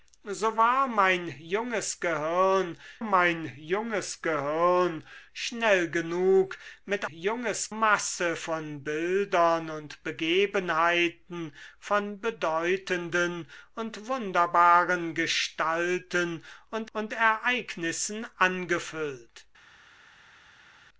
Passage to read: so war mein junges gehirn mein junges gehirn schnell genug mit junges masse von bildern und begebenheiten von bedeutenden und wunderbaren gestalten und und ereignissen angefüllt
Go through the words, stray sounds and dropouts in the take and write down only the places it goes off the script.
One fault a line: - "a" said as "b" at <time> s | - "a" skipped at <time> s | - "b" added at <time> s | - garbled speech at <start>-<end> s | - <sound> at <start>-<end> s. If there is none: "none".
none